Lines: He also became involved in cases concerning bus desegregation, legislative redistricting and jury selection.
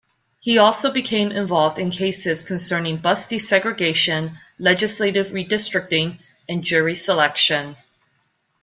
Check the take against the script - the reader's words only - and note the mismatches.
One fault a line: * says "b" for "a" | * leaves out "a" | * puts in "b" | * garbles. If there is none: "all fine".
all fine